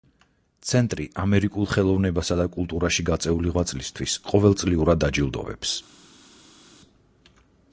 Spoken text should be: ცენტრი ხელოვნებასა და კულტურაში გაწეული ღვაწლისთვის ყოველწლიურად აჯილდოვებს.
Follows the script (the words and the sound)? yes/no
no